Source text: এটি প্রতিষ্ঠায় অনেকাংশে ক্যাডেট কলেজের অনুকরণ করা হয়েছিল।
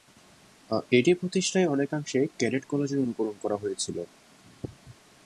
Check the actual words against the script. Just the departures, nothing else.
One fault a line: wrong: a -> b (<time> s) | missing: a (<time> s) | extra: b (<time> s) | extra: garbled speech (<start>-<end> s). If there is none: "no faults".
no faults